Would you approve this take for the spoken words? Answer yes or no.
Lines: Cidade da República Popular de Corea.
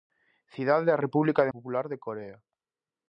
yes